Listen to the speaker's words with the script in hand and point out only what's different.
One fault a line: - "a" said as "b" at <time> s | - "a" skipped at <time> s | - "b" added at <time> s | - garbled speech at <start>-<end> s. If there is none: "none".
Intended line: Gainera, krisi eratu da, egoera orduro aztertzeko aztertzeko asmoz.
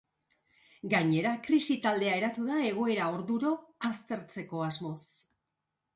- "taldea" added at 1.9 s
- "aztertzeko" skipped at 4.6 s